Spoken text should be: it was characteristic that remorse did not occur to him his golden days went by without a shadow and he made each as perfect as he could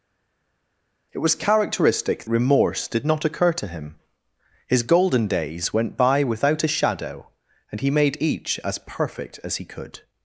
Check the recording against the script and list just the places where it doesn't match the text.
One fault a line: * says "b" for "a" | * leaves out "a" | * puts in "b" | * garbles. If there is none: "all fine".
* leaves out "that"